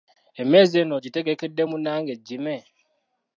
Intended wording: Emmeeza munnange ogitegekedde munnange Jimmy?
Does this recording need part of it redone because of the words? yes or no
yes